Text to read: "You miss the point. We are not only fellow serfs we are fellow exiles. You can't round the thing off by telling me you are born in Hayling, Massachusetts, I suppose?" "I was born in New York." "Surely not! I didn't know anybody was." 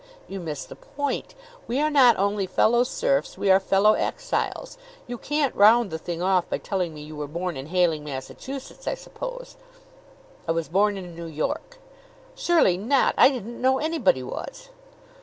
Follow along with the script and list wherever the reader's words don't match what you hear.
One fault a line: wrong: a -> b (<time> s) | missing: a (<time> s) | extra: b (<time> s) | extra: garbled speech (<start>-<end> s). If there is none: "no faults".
wrong: are -> were (7.2 s)